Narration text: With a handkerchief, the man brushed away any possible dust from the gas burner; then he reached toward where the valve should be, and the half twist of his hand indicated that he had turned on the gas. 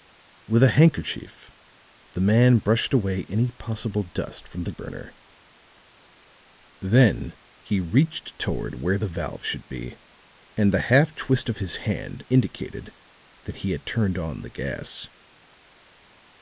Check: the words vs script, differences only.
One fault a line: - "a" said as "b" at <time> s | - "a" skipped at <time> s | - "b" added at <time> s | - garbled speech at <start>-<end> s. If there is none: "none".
- "gas" skipped at 4.7 s